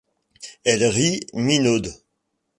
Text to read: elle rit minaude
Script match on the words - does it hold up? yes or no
yes